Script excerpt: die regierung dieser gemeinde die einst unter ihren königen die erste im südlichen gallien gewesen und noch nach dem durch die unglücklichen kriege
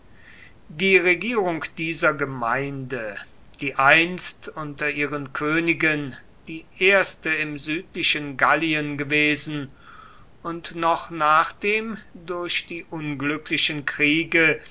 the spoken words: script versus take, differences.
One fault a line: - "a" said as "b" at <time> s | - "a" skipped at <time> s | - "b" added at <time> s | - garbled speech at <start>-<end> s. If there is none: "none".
none